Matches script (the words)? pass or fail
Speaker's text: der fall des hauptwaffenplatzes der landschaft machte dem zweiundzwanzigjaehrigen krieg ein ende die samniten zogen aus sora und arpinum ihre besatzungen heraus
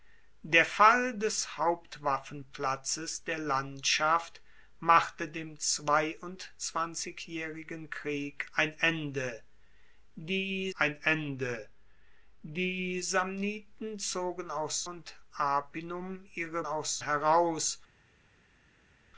fail